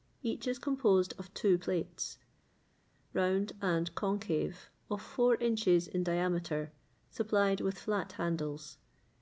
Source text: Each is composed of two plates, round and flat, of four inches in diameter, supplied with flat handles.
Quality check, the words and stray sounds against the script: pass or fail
fail